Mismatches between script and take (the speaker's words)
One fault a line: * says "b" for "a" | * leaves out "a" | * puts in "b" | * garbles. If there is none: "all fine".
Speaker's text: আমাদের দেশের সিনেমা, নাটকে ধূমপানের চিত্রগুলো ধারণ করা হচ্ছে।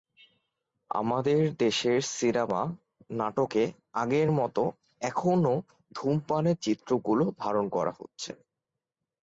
* puts in "আগের মতো এখনো"